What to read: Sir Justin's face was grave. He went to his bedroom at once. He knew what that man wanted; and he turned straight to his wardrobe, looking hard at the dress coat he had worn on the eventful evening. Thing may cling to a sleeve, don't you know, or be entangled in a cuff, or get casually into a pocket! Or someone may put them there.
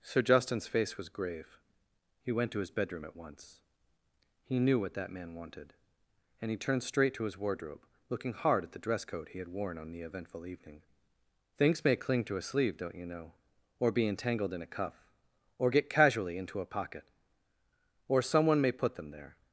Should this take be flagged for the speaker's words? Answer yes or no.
yes